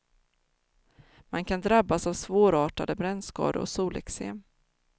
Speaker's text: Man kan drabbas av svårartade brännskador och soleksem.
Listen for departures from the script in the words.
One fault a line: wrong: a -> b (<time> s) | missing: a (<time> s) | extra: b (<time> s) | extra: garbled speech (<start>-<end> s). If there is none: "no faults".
no faults